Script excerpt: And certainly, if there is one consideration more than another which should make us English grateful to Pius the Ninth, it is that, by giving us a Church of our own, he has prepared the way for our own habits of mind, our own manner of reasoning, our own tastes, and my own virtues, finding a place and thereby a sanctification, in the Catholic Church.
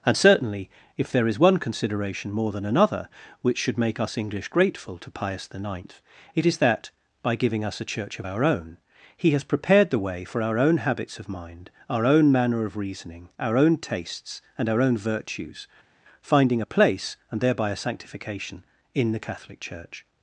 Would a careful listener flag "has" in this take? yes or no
no